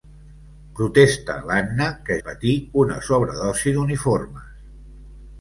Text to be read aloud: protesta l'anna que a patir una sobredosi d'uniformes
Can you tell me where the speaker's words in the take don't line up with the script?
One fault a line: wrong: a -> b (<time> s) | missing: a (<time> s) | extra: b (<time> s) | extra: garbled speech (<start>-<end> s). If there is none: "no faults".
no faults